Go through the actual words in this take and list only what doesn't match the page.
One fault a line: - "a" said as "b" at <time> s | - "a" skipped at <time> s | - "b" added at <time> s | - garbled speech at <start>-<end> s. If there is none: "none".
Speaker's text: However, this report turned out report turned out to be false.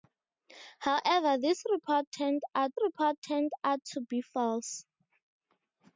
none